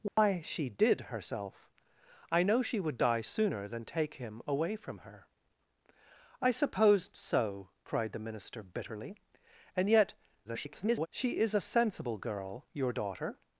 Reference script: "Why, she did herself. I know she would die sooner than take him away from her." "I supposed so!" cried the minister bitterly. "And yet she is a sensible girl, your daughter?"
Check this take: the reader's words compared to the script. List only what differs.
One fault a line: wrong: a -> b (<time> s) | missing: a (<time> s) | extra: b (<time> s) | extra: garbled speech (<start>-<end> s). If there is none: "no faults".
extra: garbled speech (10.4-11.1 s)